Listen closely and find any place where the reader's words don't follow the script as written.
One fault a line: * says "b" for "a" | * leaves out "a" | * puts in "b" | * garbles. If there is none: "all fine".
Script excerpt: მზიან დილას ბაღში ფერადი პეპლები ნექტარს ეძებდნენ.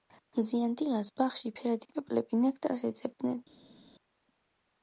all fine